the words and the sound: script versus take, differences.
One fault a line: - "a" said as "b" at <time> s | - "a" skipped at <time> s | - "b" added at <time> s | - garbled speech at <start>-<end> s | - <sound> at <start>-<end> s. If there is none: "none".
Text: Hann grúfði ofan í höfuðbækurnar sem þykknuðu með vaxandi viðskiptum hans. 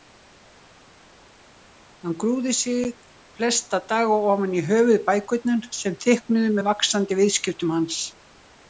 - "sig flesta daga" added at 2.6 s